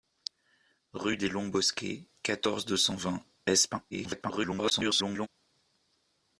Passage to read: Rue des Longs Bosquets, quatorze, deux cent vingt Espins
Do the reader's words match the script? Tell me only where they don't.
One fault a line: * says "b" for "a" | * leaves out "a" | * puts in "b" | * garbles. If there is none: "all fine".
* garbles